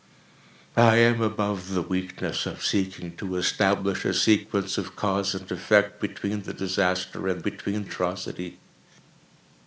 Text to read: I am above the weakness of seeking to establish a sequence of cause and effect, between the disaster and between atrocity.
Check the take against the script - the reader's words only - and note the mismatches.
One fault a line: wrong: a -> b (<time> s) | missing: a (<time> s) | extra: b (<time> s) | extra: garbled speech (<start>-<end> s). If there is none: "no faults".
no faults